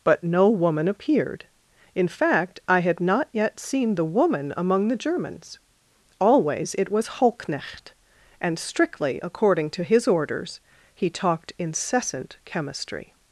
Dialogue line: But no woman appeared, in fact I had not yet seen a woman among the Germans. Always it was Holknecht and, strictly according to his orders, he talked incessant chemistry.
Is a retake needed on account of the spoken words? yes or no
yes